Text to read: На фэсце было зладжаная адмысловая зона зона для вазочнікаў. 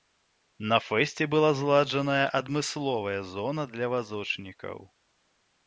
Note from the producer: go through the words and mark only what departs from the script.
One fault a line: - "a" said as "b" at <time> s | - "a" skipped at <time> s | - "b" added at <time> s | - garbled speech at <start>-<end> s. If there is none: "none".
- "было" said as "была" at 1.3 s
- "зона" skipped at 3.7 s